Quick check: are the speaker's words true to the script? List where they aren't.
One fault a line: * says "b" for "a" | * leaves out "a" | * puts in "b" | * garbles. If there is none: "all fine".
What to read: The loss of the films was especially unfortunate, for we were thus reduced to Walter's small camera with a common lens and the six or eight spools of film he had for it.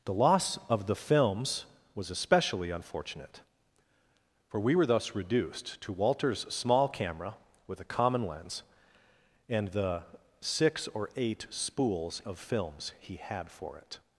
* says "films" for "film"